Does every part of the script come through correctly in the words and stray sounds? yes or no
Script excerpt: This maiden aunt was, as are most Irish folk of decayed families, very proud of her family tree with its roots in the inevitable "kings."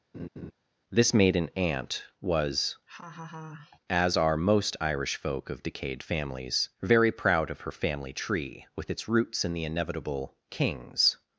no